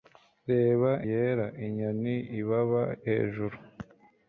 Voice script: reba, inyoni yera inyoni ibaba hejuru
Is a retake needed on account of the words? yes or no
yes